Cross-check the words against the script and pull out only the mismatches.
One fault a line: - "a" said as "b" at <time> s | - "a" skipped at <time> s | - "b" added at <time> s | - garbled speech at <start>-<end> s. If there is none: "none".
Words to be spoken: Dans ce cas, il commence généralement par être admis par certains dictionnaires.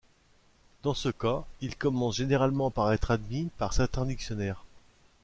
none